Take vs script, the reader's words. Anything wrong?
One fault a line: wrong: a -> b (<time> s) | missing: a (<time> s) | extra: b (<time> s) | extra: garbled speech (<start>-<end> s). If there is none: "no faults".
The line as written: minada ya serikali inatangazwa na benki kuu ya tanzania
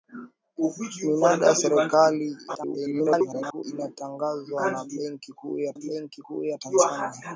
extra: garbled speech (2.5-3.6 s)
extra: benki kuu ya (5.8 s)